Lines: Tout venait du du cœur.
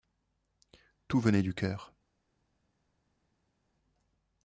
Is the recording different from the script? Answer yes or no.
yes